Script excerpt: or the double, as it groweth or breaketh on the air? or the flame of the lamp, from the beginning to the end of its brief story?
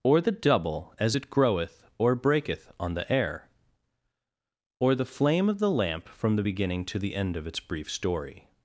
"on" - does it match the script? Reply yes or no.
yes